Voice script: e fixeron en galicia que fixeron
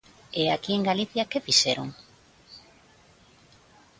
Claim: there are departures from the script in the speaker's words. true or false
true